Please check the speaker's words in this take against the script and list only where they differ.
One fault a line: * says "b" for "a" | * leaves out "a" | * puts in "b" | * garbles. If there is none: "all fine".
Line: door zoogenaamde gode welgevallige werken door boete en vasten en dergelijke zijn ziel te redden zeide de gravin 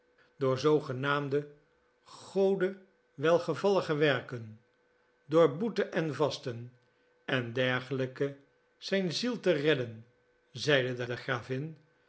* puts in "de"